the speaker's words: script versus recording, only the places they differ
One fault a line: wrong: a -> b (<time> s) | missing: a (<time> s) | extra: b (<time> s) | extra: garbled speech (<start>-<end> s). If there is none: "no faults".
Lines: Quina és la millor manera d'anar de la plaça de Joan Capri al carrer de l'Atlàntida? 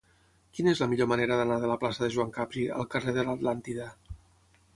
no faults